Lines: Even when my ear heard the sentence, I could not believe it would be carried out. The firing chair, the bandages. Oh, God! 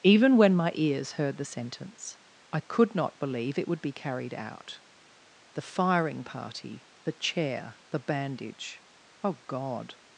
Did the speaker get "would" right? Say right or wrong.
right